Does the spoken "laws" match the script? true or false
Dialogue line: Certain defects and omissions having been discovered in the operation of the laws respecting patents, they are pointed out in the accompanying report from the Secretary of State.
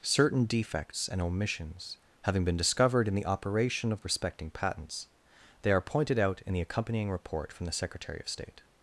false